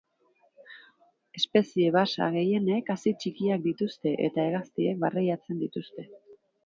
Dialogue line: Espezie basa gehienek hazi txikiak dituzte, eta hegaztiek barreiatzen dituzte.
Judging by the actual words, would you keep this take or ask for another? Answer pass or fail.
pass